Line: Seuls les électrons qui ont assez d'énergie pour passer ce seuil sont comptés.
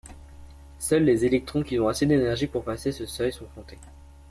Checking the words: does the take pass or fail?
pass